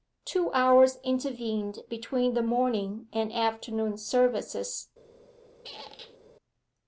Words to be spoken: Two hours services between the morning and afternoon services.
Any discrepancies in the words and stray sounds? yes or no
yes